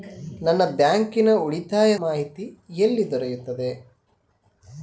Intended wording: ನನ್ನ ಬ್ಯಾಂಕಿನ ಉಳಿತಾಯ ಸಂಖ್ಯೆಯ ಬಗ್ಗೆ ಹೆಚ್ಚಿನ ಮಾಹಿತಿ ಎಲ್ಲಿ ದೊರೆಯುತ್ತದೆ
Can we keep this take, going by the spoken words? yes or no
no